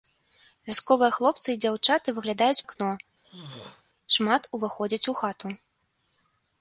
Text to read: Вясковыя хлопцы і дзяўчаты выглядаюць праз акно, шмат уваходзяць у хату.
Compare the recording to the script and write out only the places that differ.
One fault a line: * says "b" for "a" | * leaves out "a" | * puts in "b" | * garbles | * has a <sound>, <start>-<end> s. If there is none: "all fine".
* leaves out "праз"
* has a throat clearing, 3.2-3.8 s